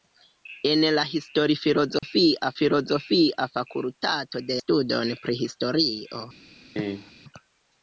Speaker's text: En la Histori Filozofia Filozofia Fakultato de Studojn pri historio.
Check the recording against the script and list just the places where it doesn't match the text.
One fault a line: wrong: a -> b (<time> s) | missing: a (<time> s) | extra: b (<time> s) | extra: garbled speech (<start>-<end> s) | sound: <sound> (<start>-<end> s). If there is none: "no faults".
sound: dropout (2.0-2.0 s)
sound: cough (6.8-7.1 s)